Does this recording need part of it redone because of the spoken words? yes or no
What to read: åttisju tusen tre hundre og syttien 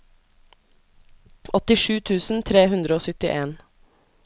no